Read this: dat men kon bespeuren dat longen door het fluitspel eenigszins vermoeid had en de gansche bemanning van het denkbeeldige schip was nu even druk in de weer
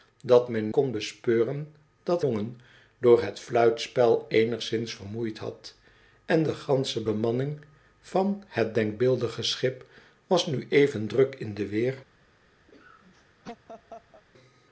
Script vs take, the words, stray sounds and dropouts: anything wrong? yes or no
yes